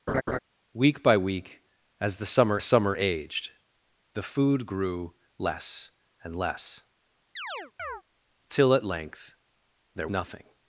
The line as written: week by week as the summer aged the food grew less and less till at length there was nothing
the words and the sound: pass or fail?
fail